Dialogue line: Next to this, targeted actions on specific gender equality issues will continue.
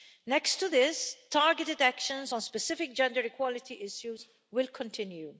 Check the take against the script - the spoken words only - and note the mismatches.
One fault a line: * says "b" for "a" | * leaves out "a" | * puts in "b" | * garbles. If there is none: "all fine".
all fine